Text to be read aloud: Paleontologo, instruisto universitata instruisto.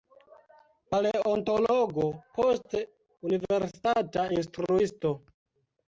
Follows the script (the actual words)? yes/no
no